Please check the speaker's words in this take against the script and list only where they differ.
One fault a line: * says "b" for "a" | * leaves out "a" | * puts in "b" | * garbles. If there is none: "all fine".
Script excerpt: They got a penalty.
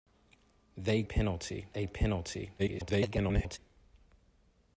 * says "penalty" for "got"
* garbles